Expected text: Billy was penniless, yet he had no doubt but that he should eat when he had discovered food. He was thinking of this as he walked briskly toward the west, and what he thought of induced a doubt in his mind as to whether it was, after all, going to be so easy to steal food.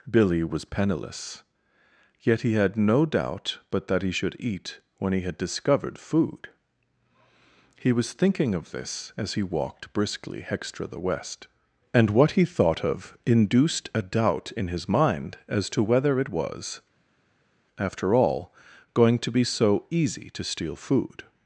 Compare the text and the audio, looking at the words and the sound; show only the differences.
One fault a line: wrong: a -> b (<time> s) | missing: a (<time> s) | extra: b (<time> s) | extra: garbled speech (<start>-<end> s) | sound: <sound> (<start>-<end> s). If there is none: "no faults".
wrong: toward -> hextra (10.4 s)